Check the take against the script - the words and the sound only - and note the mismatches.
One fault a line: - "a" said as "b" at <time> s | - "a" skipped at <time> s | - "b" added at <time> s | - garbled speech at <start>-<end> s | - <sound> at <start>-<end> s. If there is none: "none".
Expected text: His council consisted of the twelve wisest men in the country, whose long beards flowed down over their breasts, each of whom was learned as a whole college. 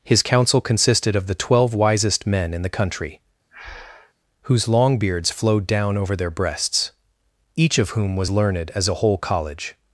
- breath at 3.5-4.1 s